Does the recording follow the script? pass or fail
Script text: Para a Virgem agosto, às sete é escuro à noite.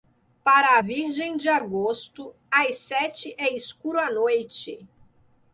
fail